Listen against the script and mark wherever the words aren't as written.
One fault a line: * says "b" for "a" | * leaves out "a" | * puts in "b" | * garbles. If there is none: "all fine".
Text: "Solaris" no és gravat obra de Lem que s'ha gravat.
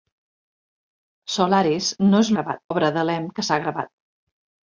all fine